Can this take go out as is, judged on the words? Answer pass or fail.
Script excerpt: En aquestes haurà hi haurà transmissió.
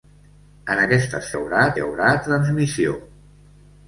pass